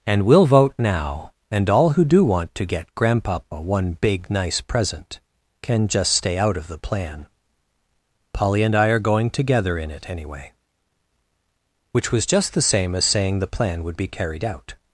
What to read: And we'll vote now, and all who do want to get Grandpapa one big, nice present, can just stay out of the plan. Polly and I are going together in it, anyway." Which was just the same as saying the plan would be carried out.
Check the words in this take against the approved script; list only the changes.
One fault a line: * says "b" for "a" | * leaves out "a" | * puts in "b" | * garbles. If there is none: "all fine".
all fine